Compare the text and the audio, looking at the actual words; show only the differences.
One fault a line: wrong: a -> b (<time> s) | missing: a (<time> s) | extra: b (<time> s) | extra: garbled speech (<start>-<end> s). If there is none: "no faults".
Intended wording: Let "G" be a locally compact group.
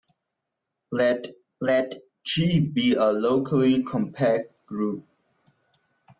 extra: let (1.6 s)